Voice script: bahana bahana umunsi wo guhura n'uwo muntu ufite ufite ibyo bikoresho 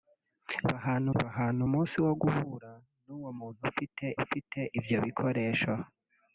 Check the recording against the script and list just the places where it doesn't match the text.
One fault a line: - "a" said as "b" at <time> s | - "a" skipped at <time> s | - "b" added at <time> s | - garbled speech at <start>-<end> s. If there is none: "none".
none